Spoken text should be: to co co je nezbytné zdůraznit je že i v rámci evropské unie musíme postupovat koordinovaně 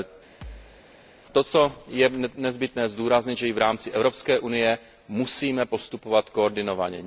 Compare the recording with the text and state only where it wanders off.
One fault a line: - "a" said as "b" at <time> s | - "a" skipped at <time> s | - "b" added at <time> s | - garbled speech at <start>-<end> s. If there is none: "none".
- "co" skipped at 1.7 s